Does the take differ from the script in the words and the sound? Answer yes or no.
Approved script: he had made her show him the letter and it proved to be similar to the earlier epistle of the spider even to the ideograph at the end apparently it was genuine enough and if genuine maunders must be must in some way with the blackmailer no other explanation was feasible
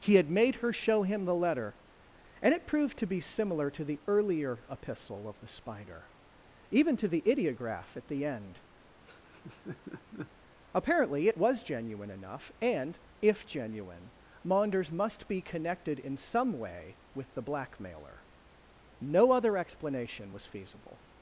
yes